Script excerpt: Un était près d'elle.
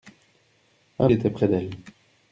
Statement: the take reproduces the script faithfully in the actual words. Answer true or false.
true